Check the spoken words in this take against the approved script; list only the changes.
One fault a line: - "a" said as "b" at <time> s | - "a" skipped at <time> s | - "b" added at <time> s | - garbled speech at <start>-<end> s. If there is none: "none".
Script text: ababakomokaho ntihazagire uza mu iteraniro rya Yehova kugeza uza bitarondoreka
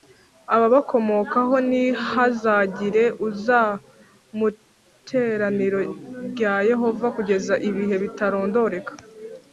- "uza" said as "ibihe" at 7.7 s